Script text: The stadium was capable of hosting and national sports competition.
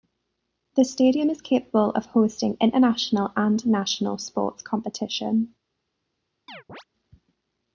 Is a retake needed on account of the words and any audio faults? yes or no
yes